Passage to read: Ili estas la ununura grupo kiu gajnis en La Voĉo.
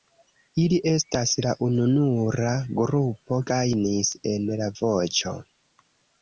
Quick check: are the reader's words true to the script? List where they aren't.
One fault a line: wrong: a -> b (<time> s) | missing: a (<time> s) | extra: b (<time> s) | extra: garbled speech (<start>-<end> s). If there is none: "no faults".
missing: kiu (3.4 s)